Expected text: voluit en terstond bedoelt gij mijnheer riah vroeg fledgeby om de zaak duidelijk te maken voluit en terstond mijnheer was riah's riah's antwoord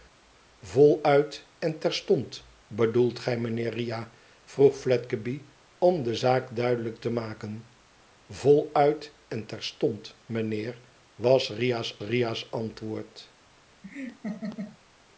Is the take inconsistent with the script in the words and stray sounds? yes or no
yes